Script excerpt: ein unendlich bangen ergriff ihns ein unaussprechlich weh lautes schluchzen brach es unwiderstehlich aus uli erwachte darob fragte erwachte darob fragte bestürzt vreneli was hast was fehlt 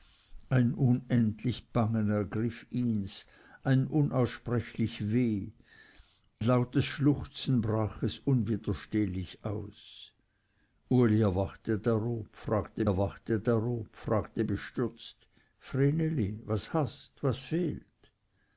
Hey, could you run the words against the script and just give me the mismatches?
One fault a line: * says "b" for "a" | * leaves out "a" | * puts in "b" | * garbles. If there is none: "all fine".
all fine